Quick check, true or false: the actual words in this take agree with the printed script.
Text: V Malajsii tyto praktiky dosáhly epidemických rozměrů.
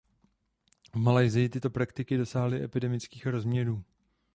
true